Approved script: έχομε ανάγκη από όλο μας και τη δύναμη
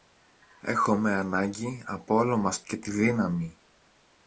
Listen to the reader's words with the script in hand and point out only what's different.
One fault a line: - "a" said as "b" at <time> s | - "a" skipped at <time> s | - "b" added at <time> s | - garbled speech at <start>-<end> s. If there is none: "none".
none